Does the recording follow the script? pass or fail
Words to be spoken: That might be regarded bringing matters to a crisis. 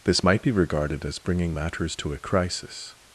fail